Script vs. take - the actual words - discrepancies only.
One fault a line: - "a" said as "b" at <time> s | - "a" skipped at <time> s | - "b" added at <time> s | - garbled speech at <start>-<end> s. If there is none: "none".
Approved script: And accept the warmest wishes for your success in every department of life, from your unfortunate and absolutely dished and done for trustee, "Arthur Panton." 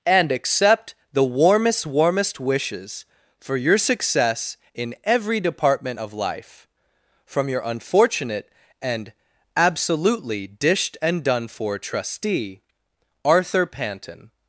- "warmest" added at 1.9 s